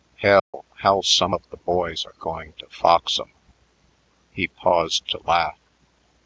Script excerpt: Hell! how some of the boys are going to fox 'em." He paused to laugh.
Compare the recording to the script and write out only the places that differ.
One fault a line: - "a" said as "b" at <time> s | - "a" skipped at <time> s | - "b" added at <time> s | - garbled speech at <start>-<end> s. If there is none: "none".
none